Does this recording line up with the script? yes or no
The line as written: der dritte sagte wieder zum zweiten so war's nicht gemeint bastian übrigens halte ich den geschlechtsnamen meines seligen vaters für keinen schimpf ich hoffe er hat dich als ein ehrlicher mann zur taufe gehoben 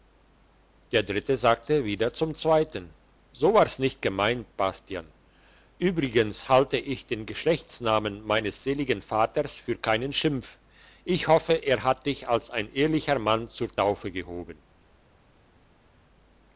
yes